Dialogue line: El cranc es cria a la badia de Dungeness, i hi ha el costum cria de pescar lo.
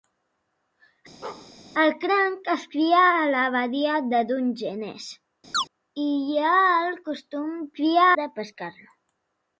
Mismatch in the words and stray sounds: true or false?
true